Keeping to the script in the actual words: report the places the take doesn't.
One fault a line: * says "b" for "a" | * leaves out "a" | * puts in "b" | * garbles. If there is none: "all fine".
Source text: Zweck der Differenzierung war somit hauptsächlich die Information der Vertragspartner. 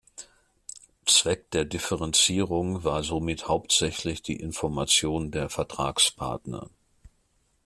all fine